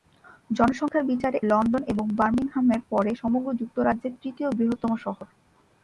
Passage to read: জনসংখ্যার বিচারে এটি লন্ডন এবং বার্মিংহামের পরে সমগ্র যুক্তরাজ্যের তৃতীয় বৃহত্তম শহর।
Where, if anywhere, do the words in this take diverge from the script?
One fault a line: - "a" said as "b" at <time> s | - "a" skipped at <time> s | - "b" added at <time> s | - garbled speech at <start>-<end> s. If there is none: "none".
- "এটি" skipped at 1.4 s